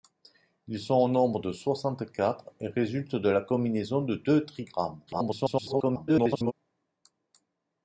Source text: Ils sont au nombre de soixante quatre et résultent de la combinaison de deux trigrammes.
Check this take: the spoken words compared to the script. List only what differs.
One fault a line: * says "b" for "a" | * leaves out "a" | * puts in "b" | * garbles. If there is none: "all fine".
* garbles